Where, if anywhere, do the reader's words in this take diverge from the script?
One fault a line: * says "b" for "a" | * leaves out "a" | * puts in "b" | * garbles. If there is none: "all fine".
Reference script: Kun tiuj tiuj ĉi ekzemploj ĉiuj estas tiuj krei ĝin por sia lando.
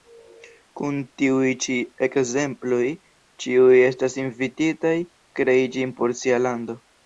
* leaves out "tiuj"
* says "invititaj" for "tiuj"